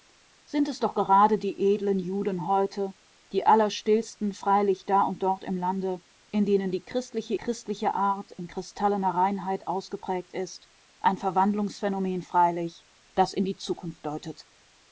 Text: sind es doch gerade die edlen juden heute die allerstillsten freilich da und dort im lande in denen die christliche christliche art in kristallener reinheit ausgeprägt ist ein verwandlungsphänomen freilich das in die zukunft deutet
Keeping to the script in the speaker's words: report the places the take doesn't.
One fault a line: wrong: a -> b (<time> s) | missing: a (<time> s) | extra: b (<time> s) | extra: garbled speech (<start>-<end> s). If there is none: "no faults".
no faults